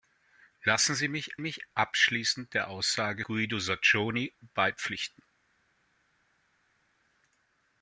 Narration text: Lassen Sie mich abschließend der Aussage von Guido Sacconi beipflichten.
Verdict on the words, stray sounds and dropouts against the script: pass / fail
fail